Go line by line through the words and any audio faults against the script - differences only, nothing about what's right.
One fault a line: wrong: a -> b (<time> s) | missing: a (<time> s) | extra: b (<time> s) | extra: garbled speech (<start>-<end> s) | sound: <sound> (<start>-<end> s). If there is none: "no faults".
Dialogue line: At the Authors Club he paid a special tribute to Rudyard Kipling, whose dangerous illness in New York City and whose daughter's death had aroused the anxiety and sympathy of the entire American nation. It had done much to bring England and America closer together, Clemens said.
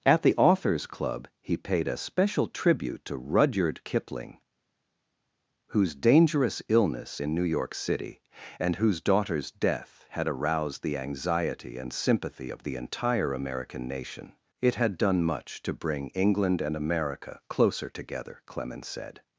no faults